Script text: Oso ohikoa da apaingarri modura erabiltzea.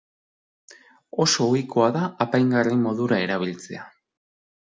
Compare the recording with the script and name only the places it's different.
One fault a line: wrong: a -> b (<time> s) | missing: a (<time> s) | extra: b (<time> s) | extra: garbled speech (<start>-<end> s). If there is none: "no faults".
no faults